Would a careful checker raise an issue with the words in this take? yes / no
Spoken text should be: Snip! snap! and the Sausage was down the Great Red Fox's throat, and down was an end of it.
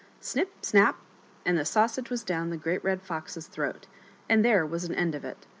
yes